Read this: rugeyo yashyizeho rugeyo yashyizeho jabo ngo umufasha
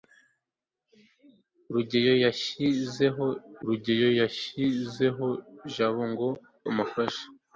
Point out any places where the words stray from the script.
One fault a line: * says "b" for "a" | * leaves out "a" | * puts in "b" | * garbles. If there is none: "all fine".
all fine